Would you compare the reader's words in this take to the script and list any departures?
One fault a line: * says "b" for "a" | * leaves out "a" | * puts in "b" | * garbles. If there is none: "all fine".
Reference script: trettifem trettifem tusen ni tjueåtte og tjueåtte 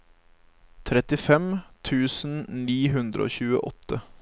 * leaves out "trettifem"
* says "hundre" for "tjueåtte"